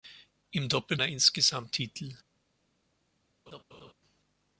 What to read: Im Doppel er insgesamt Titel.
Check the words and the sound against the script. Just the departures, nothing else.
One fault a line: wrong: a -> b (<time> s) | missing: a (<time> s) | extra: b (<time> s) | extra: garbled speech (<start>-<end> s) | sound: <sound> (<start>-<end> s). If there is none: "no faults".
sound: laugh (3.5-3.9 s)